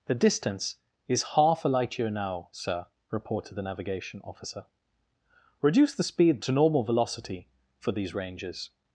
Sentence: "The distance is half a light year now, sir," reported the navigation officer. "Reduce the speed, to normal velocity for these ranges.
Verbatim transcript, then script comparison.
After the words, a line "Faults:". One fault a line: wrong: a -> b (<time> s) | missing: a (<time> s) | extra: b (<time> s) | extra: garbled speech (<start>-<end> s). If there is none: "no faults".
"The distance is half a light year now, sir," reported the navigation officer. "Reduce the speed, to normal velocity for these ranges.
Faults:
no faults